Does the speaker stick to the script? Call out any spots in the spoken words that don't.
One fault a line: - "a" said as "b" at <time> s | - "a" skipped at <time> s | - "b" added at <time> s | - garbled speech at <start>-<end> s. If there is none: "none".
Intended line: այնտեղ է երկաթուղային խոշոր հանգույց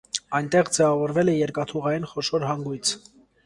- "ձևավորվել" added at 0.8 s